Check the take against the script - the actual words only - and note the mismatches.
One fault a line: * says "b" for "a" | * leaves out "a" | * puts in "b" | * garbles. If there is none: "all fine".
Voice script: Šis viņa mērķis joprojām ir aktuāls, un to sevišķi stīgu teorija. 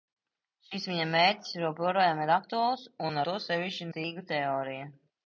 all fine